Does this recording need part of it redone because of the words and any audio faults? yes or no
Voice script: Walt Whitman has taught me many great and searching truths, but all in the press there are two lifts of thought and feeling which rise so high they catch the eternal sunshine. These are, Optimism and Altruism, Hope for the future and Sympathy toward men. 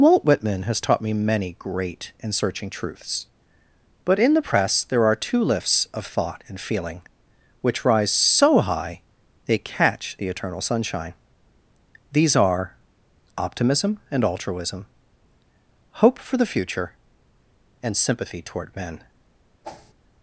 yes